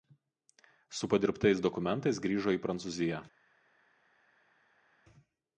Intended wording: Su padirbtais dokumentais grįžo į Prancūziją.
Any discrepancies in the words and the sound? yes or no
no